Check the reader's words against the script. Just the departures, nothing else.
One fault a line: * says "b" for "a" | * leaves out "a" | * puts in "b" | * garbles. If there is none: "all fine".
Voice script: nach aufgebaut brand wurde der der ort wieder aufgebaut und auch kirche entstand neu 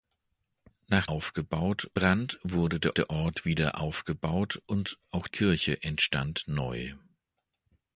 all fine